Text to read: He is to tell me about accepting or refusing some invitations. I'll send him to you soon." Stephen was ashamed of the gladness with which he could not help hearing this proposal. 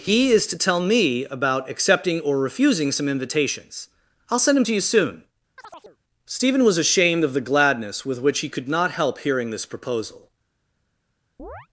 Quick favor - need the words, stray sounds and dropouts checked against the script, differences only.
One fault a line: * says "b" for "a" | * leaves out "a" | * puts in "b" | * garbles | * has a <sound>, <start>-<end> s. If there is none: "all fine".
* has a chirp, 5.6-6.0 s
* has a chirp, 11.4-11.7 s